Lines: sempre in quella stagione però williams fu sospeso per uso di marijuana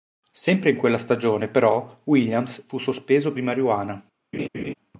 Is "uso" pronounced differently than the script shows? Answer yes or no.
yes